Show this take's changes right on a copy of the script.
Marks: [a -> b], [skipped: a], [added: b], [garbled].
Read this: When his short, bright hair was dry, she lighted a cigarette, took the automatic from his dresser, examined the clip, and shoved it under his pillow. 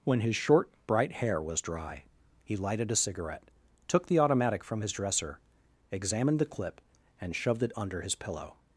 When his short, bright hair was dry, [she -> he] lighted a cigarette, took the automatic from his dresser, examined the clip, and shoved it under his pillow.